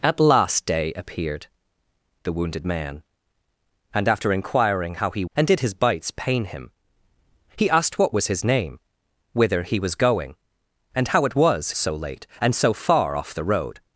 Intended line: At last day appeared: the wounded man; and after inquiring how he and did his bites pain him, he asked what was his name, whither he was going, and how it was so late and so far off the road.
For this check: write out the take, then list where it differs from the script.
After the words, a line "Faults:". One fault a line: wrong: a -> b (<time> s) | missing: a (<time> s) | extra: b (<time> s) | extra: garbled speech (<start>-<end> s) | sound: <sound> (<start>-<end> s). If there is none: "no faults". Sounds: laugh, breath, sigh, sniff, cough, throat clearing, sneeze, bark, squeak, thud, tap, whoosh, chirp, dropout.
At last day appeared: the wounded man; and after inquiring how he and did his bites pain him, he asked what was his name, whither he was going, and how it was so late and so far off the road.
Faults:
no faults